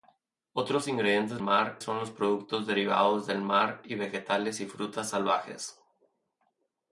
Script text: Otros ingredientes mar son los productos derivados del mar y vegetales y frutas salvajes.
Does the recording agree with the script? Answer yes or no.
yes